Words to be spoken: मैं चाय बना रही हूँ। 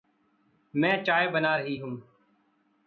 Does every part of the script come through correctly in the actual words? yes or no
yes